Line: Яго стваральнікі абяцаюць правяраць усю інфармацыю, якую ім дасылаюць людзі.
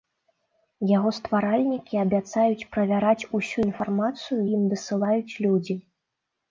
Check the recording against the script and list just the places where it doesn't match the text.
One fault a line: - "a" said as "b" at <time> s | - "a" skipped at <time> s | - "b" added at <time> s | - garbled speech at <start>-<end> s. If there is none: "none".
- "якую" skipped at 4.4 s